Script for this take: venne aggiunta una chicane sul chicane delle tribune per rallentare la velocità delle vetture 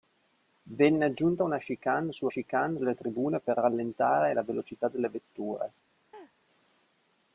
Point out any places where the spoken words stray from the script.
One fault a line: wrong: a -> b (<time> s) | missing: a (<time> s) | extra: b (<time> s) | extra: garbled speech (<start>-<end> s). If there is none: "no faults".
no faults